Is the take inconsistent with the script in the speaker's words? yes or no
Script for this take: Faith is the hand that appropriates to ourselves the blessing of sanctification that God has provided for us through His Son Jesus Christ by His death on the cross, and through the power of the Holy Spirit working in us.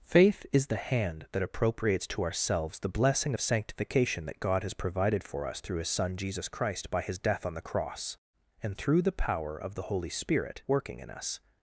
no